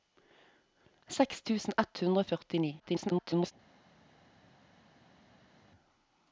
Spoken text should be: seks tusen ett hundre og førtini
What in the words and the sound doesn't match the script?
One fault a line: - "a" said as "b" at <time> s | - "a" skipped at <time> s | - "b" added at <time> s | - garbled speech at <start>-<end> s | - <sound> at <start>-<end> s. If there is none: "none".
- garbled speech at 2.8-3.5 s